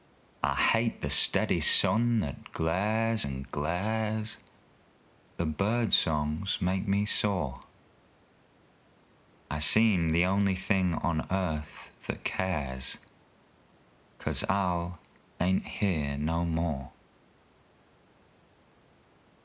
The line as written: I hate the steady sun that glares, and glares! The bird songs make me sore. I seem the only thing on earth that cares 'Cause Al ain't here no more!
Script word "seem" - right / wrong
right